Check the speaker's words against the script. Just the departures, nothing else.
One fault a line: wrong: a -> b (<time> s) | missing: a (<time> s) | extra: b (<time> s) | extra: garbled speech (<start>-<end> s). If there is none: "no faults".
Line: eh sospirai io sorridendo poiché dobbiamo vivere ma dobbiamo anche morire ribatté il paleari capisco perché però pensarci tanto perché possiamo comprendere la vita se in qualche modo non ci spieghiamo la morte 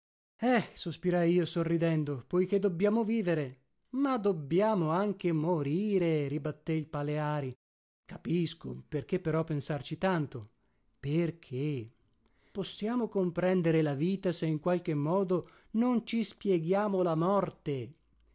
no faults